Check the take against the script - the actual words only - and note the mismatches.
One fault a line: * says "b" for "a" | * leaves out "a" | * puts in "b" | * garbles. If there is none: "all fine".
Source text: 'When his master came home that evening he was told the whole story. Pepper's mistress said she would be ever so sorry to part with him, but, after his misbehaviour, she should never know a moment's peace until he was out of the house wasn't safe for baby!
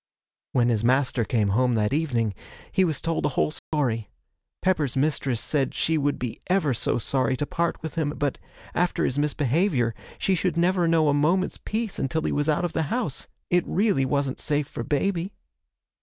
* puts in "it really"